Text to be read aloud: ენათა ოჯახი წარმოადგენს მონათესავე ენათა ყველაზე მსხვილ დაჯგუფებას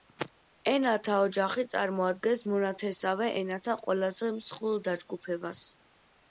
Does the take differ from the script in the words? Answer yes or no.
no